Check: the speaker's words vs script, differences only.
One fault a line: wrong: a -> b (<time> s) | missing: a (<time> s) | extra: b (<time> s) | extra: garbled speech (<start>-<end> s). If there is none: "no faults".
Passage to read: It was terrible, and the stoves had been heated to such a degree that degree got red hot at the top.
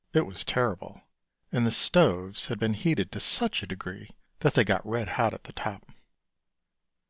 wrong: degree -> they (4.5 s)